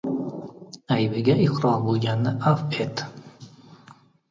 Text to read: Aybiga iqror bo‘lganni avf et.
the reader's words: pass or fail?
pass